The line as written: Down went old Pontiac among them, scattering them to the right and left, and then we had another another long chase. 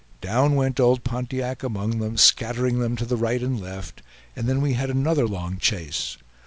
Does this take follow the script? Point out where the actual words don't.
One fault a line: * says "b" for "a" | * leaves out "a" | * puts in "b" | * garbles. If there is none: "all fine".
* leaves out "another"